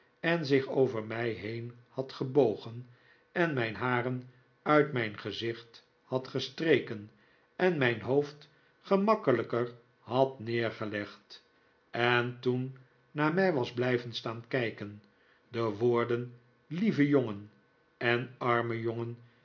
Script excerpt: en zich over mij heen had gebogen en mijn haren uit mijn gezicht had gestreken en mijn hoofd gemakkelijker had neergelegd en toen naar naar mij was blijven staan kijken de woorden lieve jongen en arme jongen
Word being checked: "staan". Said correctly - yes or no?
yes